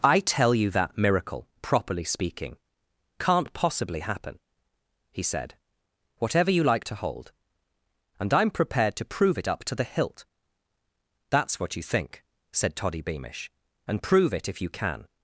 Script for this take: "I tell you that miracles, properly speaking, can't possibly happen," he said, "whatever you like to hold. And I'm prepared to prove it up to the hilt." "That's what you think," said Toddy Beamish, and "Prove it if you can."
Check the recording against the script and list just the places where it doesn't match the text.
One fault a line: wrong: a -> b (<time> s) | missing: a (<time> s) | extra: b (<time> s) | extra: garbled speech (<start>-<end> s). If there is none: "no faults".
wrong: miracles -> miracle (1.0 s)